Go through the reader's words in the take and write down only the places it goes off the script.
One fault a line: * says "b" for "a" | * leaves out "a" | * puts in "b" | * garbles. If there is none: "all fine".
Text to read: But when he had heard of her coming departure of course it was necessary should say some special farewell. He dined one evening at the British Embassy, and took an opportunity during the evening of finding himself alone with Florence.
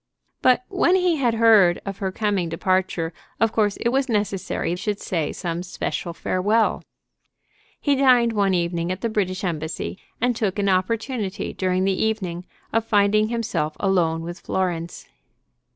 all fine